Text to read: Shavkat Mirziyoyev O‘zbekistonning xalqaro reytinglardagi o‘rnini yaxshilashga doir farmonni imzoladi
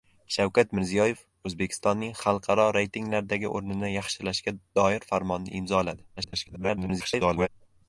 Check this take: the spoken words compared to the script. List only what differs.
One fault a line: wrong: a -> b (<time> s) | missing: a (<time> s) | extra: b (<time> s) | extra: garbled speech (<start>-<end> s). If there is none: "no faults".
extra: garbled speech (6.2-7.5 s)